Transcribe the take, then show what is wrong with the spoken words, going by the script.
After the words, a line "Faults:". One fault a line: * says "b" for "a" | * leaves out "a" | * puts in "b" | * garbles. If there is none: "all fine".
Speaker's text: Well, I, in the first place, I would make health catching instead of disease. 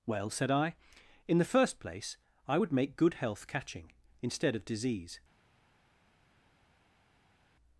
Well, said I, in the first place, I would make good health catching instead of disease.
Faults:
* puts in "said"
* puts in "good"